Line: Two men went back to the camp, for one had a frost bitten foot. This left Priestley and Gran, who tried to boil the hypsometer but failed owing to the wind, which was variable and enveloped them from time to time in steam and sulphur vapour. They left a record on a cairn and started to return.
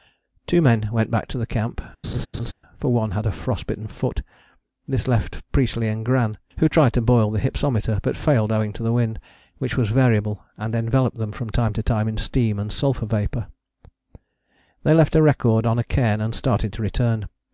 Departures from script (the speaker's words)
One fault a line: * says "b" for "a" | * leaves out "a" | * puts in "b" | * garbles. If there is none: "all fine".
all fine